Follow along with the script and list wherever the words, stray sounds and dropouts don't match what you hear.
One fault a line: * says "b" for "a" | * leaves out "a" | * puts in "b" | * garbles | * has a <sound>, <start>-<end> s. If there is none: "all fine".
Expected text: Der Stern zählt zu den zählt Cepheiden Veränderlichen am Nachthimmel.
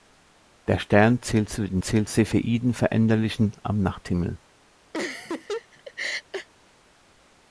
* has a laugh, 4.9-6.5 s